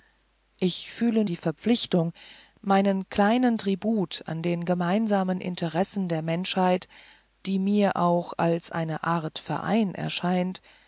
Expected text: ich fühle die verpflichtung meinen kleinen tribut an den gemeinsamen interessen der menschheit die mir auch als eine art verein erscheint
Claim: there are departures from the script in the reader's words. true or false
false